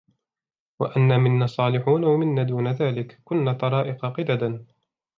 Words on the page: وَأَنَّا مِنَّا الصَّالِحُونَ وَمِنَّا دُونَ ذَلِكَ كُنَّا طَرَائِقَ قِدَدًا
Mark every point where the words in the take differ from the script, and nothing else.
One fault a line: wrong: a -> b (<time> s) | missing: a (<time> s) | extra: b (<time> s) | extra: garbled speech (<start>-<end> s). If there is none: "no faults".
no faults